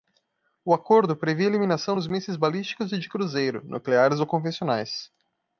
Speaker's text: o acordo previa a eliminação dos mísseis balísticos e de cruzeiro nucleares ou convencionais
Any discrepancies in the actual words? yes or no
no